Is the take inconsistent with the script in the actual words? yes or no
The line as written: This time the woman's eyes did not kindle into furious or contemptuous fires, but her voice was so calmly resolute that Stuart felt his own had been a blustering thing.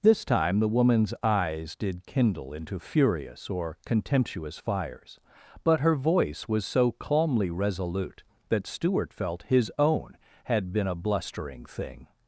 yes